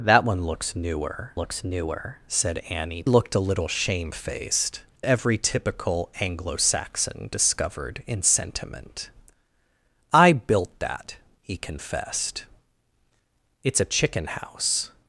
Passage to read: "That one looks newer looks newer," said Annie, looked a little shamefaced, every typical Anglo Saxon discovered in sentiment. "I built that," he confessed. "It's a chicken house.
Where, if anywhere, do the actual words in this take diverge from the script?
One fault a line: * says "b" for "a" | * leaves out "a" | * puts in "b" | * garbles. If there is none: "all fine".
all fine